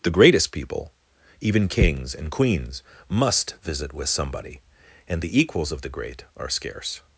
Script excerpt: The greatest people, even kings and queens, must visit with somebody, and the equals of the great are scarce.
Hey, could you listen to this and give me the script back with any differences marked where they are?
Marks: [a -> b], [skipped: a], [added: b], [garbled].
The greatest people, even kings and queens, must visit with somebody, and the equals of the great are scarce.